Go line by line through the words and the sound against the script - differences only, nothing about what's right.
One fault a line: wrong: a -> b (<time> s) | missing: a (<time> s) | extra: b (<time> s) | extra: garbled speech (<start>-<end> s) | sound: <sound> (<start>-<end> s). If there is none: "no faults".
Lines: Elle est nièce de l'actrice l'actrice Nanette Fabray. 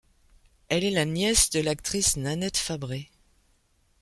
extra: la (0.9 s)
missing: l'actrice (2.2 s)